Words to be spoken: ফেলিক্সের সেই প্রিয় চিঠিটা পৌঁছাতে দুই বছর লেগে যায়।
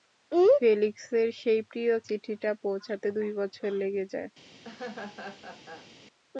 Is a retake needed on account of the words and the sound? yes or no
yes